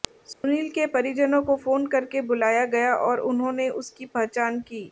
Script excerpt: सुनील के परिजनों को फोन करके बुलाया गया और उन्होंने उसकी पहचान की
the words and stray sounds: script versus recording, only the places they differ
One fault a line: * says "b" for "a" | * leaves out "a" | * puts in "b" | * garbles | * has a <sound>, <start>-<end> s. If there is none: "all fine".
* has a dropout, 0.3-0.4 s